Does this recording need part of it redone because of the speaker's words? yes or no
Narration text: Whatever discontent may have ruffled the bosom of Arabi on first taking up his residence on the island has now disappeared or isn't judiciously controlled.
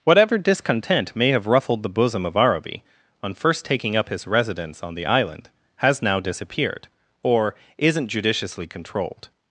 no